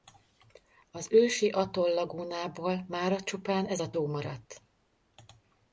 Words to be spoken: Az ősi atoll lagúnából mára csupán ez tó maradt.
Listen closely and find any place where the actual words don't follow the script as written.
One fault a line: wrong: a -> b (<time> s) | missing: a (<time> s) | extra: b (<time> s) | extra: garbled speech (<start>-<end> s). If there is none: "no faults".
extra: a (3.8 s)